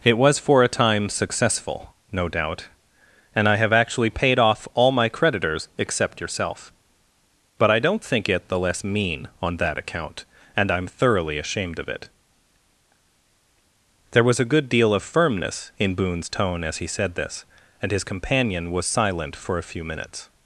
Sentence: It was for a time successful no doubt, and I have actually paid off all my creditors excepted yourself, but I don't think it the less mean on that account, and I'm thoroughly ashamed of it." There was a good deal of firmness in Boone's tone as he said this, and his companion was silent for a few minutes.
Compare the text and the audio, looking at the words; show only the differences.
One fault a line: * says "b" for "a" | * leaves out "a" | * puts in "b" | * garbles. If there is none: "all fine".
* says "except" for "excepted"